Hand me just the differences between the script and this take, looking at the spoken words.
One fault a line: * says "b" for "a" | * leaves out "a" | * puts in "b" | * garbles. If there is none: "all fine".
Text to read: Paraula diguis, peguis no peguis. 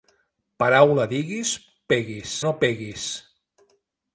all fine